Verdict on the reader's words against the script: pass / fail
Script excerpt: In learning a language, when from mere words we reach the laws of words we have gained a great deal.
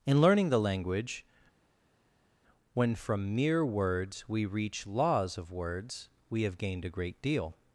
fail